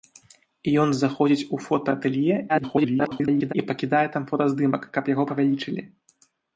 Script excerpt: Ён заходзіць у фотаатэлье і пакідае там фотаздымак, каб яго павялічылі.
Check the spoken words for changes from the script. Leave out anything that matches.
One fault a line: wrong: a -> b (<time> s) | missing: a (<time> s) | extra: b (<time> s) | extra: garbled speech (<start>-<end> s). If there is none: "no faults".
extra: garbled speech (2.5-3.5 s)